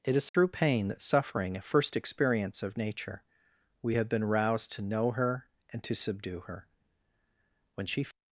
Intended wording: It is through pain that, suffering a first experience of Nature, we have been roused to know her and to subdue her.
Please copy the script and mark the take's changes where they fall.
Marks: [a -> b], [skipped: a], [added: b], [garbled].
It is through pain that, suffering a first experience of Nature, we have been roused to know her and to subdue her. [added: When she]